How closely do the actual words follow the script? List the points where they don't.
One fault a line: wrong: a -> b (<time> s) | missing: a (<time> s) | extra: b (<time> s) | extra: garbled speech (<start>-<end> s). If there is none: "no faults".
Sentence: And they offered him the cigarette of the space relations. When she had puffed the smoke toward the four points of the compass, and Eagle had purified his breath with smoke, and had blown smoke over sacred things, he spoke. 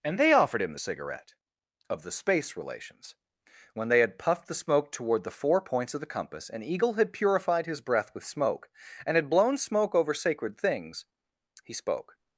wrong: she -> they (3.9 s)